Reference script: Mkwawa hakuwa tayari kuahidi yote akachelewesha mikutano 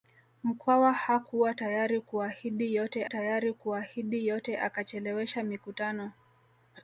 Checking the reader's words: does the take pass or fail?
fail